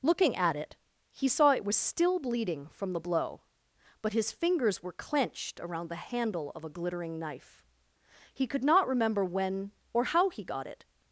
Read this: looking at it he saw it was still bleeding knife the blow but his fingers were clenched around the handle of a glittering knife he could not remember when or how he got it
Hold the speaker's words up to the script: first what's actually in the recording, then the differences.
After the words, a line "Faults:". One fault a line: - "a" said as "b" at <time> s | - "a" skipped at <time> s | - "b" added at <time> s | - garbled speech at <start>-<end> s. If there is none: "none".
looking at it he saw it was still bleeding from the blow but his fingers were clenched around the handle of a glittering knife he could not remember when or how he got it
Faults:
- "knife" said as "from" at 2.7 s